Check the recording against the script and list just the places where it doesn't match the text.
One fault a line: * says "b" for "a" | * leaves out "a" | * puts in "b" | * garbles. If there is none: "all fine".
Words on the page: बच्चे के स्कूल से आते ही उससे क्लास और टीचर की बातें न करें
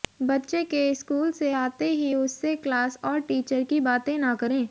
all fine